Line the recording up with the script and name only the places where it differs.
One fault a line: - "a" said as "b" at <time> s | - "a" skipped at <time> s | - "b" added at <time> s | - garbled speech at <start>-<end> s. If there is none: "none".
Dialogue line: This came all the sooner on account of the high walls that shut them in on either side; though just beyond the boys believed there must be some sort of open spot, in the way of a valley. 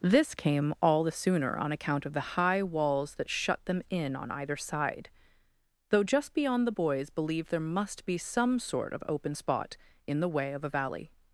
none